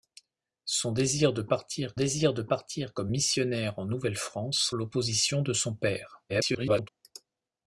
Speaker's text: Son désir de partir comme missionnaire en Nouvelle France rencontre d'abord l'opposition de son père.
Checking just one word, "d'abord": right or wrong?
wrong